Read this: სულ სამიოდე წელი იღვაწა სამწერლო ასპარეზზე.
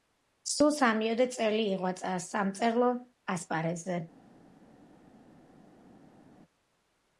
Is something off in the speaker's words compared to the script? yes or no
no